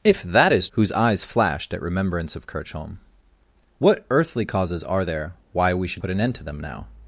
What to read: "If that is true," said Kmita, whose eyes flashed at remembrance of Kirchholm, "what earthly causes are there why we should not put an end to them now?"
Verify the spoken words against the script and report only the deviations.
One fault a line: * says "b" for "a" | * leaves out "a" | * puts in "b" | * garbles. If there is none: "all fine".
* leaves out "true said Kmita"
* leaves out "not"